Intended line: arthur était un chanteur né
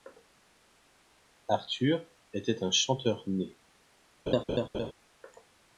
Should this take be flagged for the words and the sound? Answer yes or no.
yes